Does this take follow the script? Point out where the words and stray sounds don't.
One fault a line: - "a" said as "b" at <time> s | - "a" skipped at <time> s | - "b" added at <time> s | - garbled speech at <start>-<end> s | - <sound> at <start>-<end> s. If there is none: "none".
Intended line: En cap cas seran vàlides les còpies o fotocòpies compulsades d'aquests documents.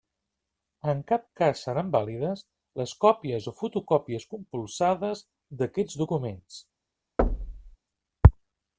- thud at 7.2-7.8 s